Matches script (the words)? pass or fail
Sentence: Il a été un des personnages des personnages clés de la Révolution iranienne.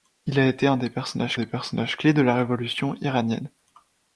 pass